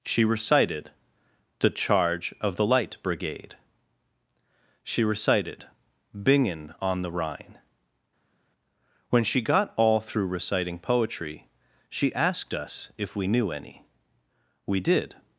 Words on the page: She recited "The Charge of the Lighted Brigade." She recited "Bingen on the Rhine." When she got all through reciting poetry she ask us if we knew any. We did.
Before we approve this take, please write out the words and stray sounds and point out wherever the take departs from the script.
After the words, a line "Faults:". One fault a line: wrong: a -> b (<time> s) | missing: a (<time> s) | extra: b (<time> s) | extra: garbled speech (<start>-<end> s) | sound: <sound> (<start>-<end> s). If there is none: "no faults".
She recited "The Charge of the Light Brigade." She recited "Bingen on the Rhine." When she got all through reciting poetry she asked us if we knew any. We did.
Faults:
wrong: Lighted -> Light (2.7 s)
wrong: ask -> asked (12.1 s)